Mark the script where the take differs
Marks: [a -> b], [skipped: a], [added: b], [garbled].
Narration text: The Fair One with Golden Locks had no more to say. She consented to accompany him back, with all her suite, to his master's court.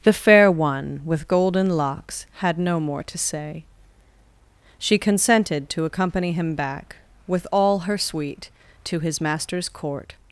The Fair One with Golden Locks had no more to say. She consented to accompany him back, with all her suite, to his master's court.